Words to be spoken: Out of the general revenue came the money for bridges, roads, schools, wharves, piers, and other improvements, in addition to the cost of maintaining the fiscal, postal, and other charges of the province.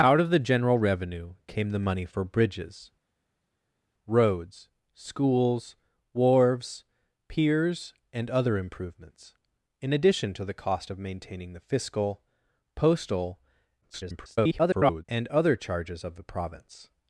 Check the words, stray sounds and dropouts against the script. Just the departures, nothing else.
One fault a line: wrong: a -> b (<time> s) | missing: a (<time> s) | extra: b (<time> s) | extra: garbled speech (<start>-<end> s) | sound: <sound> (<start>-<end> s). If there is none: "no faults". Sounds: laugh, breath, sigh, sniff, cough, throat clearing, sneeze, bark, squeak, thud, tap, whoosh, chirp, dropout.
extra: garbled speech (13.8-15.1 s)